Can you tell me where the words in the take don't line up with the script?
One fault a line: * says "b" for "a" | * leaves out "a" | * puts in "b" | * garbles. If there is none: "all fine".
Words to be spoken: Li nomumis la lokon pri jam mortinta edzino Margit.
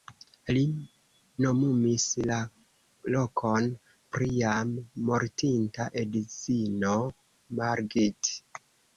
all fine